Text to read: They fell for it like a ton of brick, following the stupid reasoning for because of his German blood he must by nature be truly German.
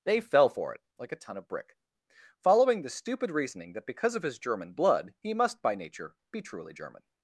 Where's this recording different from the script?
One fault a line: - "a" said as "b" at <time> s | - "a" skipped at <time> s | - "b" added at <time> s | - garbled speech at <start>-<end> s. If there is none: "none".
- "for" said as "that" at 3.7 s